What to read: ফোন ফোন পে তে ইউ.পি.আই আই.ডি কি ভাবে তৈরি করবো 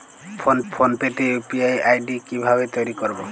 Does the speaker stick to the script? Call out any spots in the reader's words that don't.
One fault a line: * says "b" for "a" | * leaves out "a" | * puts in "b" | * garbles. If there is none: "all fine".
all fine